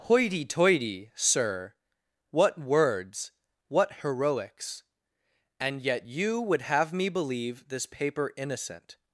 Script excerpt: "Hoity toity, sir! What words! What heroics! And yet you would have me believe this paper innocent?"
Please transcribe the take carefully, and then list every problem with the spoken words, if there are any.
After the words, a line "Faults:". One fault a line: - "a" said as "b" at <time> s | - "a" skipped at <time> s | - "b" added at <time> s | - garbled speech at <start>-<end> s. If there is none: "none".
"Hoity toity, sir! What words! What heroics! And yet you would have me believe this paper innocent?"
Faults:
none